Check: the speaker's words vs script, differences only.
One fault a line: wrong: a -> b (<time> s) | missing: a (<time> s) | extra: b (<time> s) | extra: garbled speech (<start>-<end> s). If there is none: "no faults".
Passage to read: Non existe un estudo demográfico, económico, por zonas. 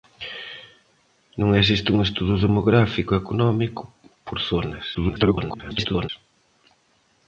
extra: garbled speech (4.9-6.1 s)